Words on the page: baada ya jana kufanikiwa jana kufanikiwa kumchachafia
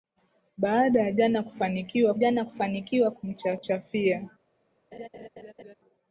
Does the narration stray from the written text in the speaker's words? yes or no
no